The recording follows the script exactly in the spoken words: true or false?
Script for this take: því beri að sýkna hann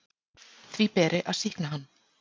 true